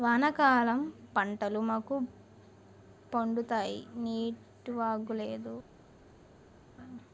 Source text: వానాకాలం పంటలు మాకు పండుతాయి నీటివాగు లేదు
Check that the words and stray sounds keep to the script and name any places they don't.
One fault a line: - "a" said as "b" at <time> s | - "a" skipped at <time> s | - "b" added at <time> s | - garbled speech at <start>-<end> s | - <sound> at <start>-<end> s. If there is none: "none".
none